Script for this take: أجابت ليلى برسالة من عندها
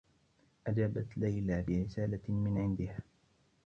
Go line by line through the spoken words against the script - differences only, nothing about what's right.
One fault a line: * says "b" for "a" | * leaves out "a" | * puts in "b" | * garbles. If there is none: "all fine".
all fine